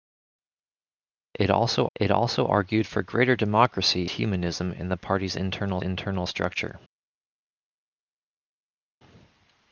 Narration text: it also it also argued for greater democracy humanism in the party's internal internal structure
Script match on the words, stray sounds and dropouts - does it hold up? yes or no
yes